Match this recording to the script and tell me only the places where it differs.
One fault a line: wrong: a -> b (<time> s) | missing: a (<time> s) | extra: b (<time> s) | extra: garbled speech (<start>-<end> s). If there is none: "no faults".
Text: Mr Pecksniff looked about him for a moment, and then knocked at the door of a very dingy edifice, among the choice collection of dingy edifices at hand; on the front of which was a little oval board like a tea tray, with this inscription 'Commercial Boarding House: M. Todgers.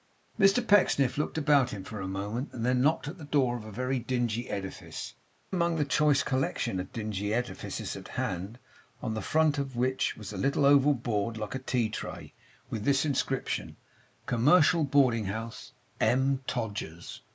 no faults